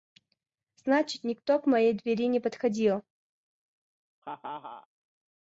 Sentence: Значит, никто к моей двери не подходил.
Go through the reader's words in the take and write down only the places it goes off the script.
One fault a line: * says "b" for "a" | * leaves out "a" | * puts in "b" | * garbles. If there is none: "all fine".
all fine